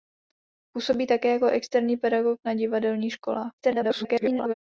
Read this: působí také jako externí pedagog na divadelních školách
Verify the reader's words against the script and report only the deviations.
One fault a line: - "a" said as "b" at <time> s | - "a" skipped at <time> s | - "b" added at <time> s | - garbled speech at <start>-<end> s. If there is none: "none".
- garbled speech at 3.6-4.5 s